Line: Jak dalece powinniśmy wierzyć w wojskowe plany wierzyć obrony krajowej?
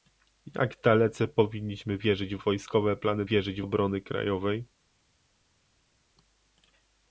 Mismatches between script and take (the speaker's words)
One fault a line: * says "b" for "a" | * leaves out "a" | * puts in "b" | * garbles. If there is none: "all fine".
all fine